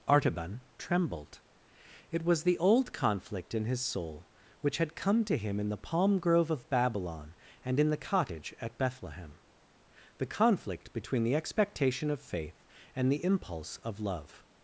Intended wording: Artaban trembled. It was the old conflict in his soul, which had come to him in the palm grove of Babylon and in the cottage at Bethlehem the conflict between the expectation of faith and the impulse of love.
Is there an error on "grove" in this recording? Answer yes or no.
no